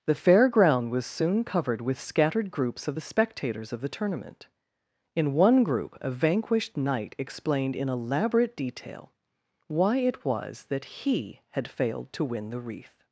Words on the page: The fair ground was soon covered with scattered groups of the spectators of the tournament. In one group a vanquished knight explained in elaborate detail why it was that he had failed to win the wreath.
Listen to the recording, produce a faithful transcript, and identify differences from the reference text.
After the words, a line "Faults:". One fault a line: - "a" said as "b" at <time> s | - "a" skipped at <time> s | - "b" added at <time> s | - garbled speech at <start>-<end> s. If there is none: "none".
The fair ground was soon covered with scattered groups of the spectators of the tournament. In one group a vanquished knight explained in elaborate detail why it was that he had failed to win the wreath.
Faults:
none